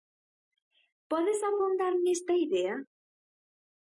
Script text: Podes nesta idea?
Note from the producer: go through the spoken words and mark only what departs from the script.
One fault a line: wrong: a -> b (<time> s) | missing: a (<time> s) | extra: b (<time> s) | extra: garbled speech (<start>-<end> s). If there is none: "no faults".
extra: afondar (1.5 s)